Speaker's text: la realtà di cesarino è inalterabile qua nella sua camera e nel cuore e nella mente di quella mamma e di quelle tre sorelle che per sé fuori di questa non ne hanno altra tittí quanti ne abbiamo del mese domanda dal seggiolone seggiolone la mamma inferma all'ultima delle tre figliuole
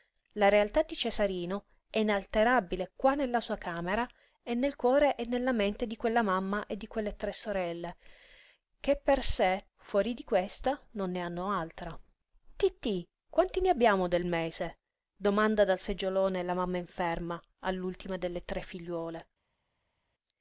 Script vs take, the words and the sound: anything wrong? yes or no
yes